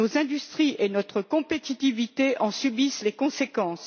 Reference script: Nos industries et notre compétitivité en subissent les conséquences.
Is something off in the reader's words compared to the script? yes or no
no